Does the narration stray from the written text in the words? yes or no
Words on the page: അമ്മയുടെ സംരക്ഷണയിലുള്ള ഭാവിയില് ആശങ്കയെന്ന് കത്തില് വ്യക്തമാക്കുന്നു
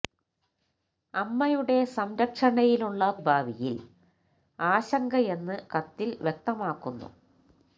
no